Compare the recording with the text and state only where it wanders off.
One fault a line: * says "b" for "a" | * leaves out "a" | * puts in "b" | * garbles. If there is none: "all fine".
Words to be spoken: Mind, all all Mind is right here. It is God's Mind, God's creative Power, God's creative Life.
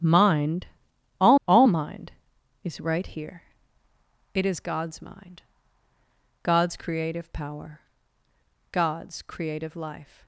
all fine